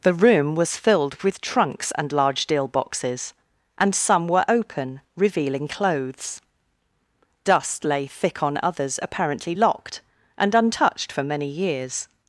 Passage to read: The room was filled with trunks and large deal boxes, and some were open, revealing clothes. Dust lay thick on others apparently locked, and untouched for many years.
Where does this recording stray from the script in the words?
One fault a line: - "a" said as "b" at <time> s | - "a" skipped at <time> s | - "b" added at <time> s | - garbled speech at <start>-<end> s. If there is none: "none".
none